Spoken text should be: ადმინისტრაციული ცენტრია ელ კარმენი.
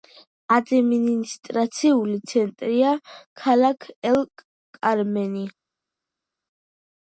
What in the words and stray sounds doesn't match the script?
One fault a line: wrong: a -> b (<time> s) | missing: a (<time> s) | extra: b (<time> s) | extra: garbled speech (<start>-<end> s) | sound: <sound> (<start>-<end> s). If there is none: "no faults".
extra: ქალაქი (3.4 s)